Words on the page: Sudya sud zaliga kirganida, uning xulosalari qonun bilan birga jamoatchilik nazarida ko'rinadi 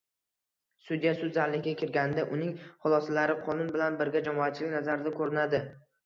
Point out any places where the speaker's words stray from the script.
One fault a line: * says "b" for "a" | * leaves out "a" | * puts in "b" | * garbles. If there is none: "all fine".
all fine